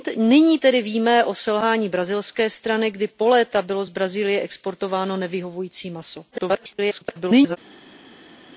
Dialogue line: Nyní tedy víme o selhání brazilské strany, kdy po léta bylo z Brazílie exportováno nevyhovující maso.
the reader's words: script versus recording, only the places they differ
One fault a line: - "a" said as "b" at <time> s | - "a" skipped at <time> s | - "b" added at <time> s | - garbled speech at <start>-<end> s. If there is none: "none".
- garbled speech at 6.3-7.6 s